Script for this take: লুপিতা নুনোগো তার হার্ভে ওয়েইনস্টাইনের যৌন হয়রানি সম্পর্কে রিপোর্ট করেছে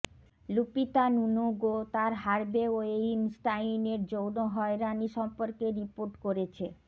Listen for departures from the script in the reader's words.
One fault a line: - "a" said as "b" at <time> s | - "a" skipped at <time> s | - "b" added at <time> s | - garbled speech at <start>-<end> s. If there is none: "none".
none